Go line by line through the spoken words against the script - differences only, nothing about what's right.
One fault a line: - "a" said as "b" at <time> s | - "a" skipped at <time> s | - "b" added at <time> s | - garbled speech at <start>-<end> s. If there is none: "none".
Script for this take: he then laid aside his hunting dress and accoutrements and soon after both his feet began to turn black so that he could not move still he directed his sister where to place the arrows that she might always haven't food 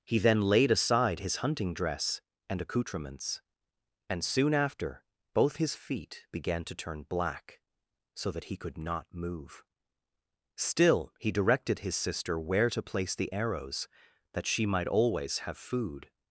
- "haven't" said as "have" at 15.4 s